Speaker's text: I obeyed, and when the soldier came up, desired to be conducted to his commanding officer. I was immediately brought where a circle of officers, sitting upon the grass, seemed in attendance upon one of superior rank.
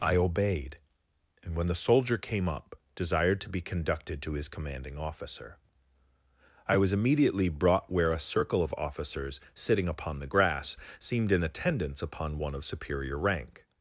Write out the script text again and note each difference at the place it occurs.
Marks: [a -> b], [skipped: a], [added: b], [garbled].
I obeyed, and when the soldier came up, desired to be conducted to his commanding officer. I was immediately brought where a circle of officers, sitting upon the grass, seemed in attendance upon one of superior rank.